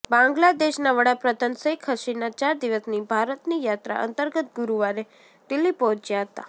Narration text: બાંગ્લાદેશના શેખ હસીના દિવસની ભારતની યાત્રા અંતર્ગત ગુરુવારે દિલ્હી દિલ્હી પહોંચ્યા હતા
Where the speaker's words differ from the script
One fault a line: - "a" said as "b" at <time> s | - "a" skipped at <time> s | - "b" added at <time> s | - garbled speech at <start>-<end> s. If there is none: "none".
- "વડાપ્રધાન" added at 0.9 s
- "ચાર" added at 2.4 s
- "દિલ્હી" skipped at 5.7 s